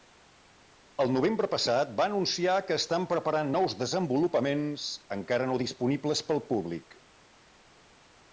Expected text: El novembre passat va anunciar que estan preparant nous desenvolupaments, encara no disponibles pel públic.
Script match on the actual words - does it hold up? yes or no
yes